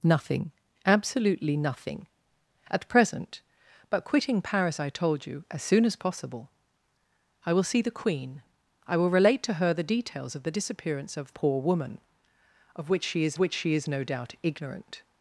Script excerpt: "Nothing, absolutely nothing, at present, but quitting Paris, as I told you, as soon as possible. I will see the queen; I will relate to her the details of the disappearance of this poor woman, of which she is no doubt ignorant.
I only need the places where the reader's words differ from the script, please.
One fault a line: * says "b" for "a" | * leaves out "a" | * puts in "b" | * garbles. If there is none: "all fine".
* leaves out "as"
* leaves out "this"
* puts in "which she is"